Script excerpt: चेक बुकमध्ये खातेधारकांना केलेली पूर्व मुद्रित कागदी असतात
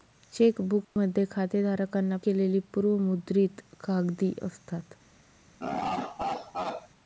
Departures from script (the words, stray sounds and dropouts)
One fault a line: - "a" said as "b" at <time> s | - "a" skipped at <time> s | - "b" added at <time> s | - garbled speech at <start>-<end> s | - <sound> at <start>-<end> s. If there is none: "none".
- dropout at 0.8-1.0 s
- laugh at 5.6-6.9 s